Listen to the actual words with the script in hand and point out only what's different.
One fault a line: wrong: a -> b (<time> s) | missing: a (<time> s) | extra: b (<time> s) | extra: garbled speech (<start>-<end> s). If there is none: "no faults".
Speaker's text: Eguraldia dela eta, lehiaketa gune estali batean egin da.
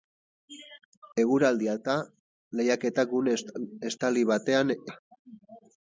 missing: dela (1.8 s)
missing: egin (4.8 s)